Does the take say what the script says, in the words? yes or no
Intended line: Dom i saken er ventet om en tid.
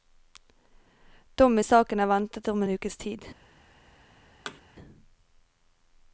no